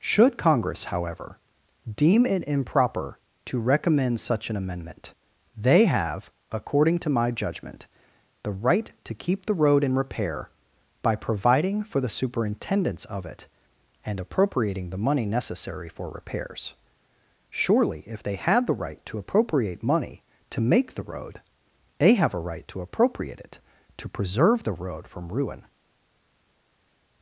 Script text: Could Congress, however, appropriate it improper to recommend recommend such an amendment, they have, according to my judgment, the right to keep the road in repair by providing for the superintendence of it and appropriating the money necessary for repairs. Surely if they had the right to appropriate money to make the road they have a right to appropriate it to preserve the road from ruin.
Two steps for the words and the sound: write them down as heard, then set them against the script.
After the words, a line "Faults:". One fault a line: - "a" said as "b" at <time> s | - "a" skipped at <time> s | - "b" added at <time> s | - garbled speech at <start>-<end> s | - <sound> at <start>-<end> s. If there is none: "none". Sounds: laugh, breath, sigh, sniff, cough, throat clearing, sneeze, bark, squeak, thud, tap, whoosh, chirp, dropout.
Should Congress, however, deem it improper to recommend such an amendment, they have, according to my judgment, the right to keep the road in repair by providing for the superintendence of it and appropriating the money necessary for repairs. Surely if they had the right to appropriate money to make the road they have a right to appropriate it to preserve the road from ruin.
Faults:
- "Could" said as "Should" at 0.0 s
- "appropriate" said as "deem" at 1.9 s
- "recommend" skipped at 4.2 s